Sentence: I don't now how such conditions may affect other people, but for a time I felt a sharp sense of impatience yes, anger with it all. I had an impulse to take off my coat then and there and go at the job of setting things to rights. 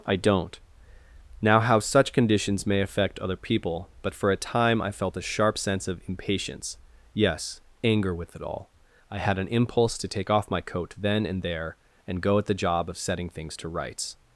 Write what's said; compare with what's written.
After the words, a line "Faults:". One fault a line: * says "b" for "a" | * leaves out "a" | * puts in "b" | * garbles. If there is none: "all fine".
I don't now how such conditions may affect other people, but for a time I felt a sharp sense of impatience yes, anger with it all. I had an impulse to take off my coat then and there and go at the job of setting things to rights.
Faults:
all fine